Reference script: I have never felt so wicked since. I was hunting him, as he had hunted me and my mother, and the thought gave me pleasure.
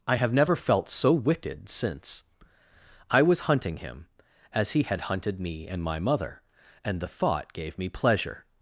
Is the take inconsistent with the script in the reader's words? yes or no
no